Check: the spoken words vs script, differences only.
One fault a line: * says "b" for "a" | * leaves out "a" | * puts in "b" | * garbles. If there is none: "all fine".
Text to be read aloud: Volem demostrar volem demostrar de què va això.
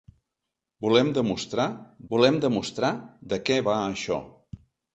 all fine